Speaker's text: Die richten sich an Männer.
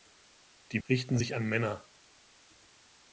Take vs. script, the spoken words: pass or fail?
pass